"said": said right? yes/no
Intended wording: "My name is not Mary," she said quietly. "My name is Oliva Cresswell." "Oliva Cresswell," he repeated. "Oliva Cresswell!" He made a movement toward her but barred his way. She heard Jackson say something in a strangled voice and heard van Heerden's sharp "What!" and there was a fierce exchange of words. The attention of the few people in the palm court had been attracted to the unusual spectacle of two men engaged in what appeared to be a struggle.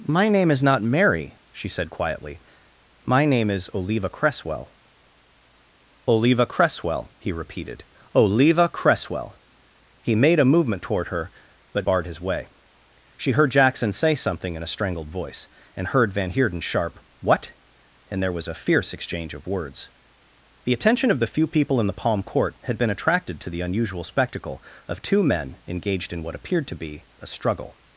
yes